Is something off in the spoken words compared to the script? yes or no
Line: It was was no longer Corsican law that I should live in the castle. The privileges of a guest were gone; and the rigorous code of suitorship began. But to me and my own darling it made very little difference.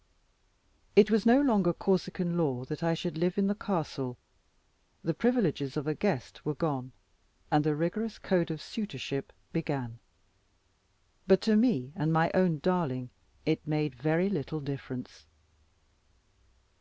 yes